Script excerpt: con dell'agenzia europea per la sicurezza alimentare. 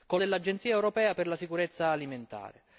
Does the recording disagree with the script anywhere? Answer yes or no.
no